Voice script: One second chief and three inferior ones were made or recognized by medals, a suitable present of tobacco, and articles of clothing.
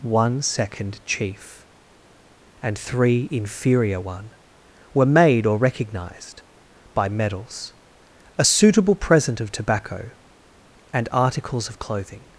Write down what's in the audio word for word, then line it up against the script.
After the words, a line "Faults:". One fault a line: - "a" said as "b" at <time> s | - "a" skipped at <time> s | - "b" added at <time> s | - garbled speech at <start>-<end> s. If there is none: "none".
One second chief and three inferior one were made or recognized by medals, a suitable present of tobacco, and articles of clothing.
Faults:
- "ones" said as "one" at 4.0 s